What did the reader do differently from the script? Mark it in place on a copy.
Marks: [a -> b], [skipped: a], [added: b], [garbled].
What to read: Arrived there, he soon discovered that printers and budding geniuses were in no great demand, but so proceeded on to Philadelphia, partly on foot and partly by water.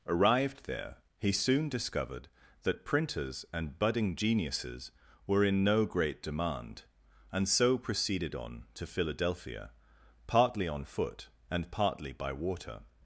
Arrived there, he soon discovered that printers and budding geniuses were in no great demand, [but -> and] so proceeded on to Philadelphia, partly on foot and partly by water.